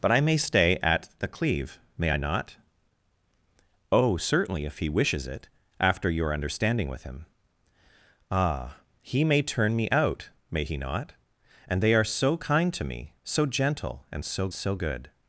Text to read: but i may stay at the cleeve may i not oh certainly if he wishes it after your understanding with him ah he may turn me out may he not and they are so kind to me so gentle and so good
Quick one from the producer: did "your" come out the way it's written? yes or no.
yes